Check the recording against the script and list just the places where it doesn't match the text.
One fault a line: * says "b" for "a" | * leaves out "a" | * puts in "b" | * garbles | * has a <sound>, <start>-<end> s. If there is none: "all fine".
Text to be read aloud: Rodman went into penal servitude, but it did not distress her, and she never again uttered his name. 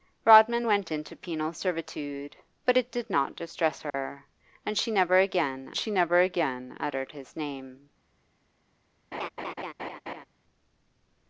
* has a dropout, 3.9-3.9 s
* puts in "she never again"
* has a laugh, 9.1-10.2 s